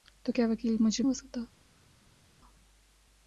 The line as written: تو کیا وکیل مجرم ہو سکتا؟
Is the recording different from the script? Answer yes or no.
no